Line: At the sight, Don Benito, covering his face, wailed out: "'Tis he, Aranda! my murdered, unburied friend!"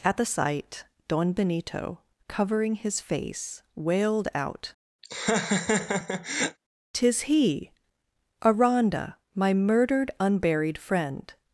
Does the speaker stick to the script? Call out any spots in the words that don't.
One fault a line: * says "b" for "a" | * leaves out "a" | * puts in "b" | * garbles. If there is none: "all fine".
all fine